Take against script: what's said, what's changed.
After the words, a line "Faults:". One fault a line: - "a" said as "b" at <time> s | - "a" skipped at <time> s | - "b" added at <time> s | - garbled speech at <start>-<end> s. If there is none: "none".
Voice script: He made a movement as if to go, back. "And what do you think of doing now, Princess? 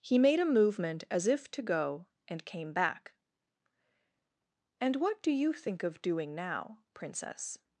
He made a movement as if to go, and came back. "And what do you think of doing now, Princess?
Faults:
- "and came" added at 2.3 s